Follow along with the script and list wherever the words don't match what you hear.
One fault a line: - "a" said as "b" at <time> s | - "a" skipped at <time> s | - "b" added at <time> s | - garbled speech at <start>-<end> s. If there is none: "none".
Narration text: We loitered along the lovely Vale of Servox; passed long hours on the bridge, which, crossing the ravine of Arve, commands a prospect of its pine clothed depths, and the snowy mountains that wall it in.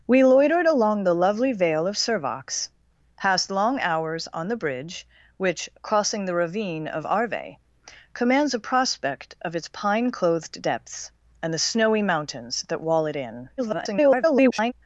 - garbled speech at 13.6-14.7 s